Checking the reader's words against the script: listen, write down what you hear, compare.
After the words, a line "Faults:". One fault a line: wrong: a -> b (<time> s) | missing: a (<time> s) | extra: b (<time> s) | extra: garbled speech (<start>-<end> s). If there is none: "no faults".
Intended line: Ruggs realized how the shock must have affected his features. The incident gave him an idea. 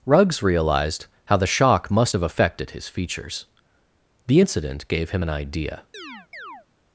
Ruggs realized how the shock must have affected his features. The incident gave him an idea.
Faults:
no faults